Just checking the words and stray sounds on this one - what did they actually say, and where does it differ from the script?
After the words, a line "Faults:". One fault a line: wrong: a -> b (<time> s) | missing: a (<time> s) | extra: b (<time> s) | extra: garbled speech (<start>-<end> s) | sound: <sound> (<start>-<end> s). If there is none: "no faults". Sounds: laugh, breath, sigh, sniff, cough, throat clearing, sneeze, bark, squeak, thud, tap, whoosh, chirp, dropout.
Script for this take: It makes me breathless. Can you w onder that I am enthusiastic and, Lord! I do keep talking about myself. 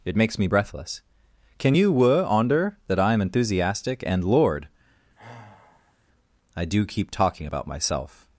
It makes me breathless. Can you were onder that I am enthusiastic and, Lord! I do keep talking about myself.
Faults:
wrong: w -> were (1.9 s)
sound: sigh (5.2-6.0 s)